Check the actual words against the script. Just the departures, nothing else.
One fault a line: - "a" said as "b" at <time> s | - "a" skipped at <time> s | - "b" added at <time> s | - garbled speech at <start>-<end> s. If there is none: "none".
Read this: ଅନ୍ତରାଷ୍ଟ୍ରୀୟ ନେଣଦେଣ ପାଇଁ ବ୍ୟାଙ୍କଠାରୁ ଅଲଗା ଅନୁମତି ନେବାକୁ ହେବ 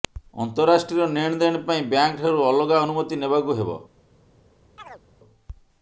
none